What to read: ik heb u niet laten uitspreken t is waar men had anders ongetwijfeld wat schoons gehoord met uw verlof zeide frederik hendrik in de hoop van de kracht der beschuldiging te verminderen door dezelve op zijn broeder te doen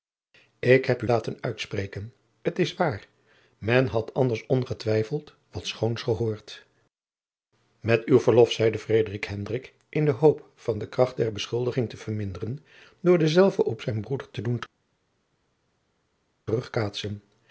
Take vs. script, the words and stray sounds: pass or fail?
fail